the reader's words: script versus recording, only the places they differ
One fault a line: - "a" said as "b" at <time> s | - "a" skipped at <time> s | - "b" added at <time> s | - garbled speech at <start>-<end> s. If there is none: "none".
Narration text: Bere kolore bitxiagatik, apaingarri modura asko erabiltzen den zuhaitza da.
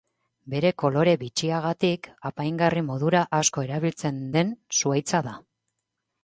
none